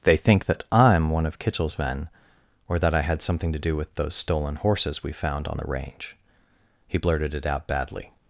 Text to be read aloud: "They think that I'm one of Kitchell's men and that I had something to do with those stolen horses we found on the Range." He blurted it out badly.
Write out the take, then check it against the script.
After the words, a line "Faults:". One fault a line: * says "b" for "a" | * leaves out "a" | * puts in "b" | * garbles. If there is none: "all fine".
"They think that I'm one of Kitchell's men or that I had something to do with those stolen horses we found on the Range." He blurted it out badly.
Faults:
* says "or" for "and"